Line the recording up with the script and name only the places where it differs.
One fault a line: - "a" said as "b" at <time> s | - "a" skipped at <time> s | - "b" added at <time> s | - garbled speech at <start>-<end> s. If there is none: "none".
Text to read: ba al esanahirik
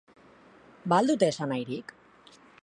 - "dute" added at 1.1 s